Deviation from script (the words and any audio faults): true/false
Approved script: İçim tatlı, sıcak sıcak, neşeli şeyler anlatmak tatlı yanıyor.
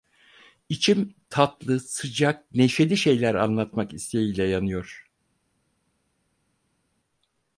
true